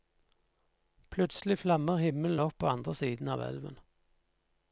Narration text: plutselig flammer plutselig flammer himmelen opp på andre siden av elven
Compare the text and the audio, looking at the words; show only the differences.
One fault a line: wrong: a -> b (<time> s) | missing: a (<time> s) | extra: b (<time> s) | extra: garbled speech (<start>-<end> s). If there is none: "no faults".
missing: plutselig flammer (2.0 s)